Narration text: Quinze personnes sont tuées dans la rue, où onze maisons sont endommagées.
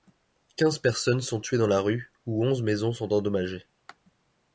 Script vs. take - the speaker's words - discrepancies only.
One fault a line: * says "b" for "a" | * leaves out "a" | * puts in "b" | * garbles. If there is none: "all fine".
all fine